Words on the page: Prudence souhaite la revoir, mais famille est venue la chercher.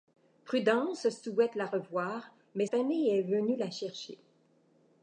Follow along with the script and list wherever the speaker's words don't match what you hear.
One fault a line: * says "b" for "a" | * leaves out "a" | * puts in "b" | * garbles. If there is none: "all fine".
all fine